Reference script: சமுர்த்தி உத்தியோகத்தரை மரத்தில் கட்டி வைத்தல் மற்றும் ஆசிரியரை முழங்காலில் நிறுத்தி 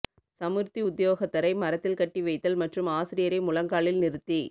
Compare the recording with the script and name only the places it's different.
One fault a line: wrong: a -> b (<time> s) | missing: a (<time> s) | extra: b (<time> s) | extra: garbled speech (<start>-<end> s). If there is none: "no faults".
no faults